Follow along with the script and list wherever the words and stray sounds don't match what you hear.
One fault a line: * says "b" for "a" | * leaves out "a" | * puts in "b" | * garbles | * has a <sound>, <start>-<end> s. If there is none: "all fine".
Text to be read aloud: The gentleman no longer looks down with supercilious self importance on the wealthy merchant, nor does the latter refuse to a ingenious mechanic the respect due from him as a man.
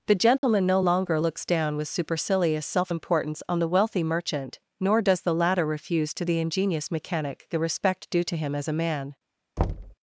* has a dropout, 0.4-0.4 s
* says "the" for "a"
* says "to" for "from"
* has a thud, 9.6-9.9 s